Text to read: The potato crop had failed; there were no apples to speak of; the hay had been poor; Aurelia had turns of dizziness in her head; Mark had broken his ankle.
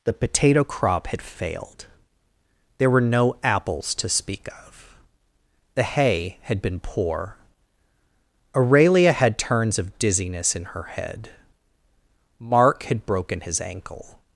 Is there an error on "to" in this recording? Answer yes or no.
no